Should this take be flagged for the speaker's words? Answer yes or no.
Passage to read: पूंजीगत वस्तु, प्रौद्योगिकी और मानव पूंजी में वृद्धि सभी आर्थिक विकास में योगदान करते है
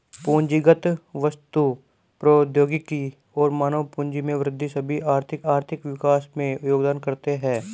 yes